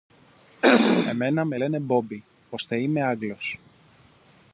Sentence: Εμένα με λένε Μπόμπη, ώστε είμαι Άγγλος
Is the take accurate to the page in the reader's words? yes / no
yes